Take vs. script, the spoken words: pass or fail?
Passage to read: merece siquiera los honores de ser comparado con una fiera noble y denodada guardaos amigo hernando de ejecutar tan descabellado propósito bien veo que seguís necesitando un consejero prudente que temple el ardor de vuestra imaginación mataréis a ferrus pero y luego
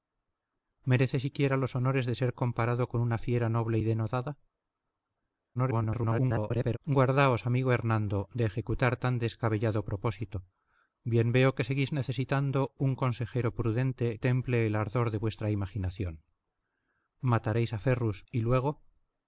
fail